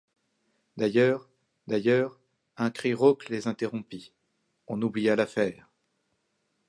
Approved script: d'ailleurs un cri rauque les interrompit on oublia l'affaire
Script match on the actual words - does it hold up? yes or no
no